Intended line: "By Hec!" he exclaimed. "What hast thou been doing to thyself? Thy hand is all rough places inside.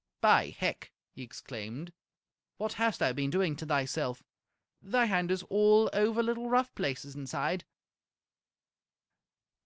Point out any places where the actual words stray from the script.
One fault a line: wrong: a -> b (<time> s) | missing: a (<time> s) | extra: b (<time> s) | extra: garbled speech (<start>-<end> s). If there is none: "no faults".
extra: over little (5.9 s)